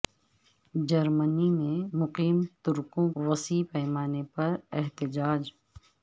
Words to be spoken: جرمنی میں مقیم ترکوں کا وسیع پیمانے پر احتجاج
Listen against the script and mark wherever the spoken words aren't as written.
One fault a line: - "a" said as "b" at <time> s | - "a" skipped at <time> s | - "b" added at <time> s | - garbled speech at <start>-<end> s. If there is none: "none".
- "کا" skipped at 3.1 s